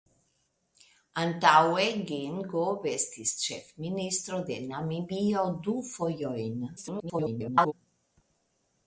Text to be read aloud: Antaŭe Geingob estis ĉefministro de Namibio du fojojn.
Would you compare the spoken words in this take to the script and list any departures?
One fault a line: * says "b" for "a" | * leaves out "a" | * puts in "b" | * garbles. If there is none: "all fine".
* garbles